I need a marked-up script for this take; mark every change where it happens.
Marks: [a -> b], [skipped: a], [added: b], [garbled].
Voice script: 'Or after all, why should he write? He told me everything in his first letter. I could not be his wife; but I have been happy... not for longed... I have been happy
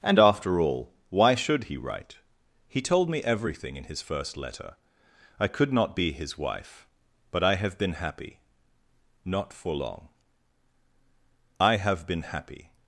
['Or -> And] after all, why should he write? He told me everything in his first letter. I could not be his wife; but I have been happy... not for [longed... -> long] I have been happy